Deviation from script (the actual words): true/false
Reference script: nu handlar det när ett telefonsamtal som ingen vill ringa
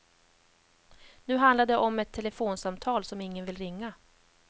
true